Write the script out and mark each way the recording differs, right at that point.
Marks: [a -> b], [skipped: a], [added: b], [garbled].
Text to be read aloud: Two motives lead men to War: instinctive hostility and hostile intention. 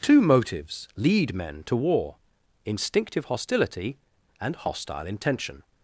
Two motives lead men to War: instinctive hostility and hostile intention.